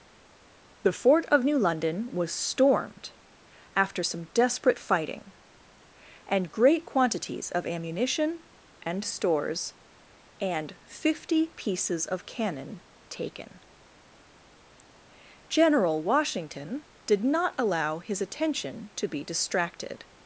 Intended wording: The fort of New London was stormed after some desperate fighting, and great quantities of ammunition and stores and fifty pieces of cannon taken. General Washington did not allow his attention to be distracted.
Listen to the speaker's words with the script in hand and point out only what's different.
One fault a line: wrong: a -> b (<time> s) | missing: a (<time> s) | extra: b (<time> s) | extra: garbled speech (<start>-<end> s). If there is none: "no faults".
no faults